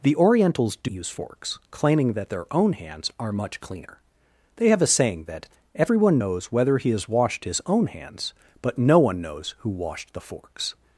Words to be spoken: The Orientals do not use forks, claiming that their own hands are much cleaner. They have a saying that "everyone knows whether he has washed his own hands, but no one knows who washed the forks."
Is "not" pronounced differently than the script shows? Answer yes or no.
yes